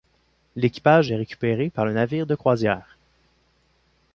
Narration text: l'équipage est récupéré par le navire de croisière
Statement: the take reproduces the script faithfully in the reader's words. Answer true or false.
true